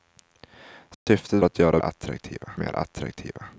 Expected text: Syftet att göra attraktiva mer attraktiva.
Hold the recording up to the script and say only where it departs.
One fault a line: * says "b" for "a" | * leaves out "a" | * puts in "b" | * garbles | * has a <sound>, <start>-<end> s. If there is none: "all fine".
* has a dropout, 0.9-1.1 s